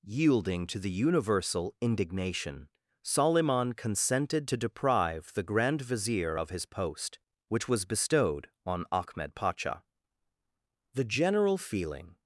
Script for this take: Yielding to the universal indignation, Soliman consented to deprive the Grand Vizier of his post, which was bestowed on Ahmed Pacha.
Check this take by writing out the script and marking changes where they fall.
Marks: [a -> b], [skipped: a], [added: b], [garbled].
Yielding to the universal indignation, Soliman consented to deprive the Grand Vizier of his post, which was bestowed on Ahmed Pacha. [added: The general feeling]